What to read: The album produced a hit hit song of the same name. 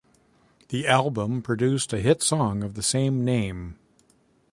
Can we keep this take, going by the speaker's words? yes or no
no